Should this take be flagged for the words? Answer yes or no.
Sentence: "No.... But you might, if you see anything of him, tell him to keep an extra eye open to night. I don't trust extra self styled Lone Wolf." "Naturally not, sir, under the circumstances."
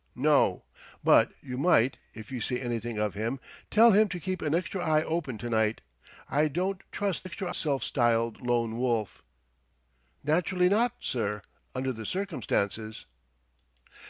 no